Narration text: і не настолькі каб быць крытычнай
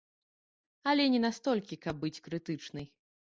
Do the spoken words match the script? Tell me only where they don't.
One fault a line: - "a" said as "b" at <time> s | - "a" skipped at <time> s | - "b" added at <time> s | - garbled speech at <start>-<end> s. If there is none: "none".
- "і" said as "але" at 0.9 s